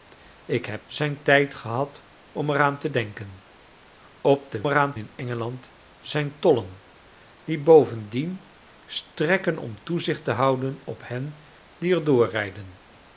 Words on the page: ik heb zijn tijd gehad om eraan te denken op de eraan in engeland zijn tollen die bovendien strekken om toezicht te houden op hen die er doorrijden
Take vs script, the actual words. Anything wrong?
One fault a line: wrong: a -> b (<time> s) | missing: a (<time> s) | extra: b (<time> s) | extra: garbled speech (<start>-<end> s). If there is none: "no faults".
no faults